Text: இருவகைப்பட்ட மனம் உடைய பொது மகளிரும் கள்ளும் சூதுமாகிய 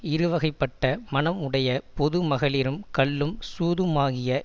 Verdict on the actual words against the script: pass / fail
pass